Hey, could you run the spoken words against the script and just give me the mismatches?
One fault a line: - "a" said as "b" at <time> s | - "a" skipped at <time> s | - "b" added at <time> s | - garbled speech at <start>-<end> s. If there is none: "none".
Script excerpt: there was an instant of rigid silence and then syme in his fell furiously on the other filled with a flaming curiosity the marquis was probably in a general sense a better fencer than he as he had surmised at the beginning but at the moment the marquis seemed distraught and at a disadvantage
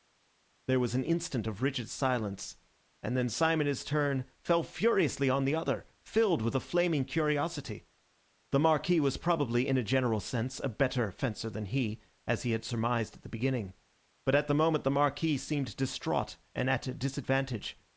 - "turn" added at 3.9 s